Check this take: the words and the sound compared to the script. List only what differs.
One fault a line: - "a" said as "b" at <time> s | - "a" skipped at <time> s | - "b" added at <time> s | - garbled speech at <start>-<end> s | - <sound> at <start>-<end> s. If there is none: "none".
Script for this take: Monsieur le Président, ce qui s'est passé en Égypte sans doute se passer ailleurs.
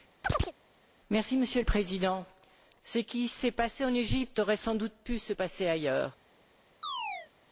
- chirp at 0.2-0.5 s
- "aurait" added at 4.4 s
- "pu" added at 5.0 s
- chirp at 6.8-7.3 s